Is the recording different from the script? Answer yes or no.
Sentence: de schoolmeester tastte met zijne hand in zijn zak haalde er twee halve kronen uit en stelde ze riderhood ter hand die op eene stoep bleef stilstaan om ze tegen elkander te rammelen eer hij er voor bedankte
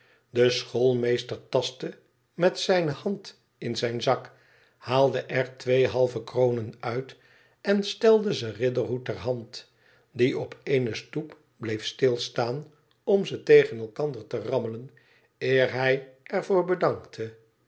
no